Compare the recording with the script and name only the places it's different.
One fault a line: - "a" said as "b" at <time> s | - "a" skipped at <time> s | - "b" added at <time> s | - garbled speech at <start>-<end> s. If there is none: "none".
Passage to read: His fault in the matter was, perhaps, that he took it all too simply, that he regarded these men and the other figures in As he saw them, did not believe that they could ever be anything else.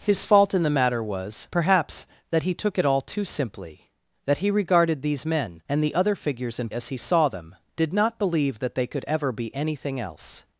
none